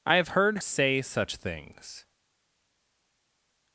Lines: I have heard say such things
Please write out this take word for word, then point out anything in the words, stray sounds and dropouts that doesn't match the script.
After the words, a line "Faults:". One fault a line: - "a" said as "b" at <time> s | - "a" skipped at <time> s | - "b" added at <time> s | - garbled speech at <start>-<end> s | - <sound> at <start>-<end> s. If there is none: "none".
I have heard say such things
Faults:
none